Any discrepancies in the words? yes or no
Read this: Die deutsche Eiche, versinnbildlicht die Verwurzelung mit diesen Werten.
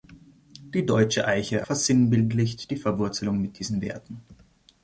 no